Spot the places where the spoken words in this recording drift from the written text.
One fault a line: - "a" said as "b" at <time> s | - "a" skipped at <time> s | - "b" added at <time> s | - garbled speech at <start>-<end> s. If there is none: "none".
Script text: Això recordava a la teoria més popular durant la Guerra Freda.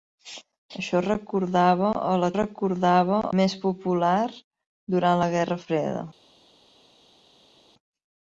- "teoria" said as "recordava" at 2.3 s